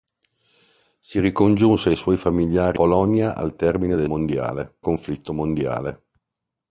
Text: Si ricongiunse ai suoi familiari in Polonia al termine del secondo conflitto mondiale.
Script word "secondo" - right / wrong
wrong